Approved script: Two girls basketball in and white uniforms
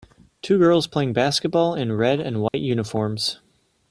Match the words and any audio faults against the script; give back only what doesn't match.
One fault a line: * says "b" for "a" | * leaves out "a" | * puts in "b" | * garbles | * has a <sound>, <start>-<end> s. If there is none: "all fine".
* puts in "playing"
* puts in "red"
* has a dropout, 2.5-2.5 s